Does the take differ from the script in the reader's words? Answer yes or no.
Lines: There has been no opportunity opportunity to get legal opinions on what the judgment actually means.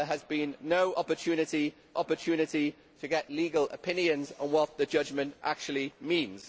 no